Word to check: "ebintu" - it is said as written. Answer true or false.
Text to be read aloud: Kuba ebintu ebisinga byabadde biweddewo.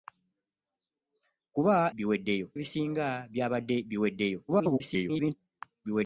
false